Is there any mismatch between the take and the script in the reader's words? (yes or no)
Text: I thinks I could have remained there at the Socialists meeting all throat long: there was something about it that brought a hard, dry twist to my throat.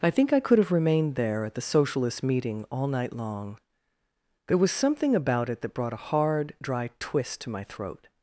yes